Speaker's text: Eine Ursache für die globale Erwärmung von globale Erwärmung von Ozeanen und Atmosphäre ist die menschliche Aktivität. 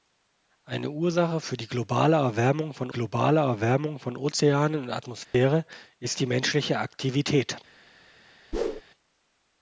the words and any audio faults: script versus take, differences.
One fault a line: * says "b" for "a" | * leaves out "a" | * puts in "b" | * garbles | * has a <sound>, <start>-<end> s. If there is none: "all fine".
* has a dropout, 5.2-5.3 s
* has a whoosh, 8.5-8.8 s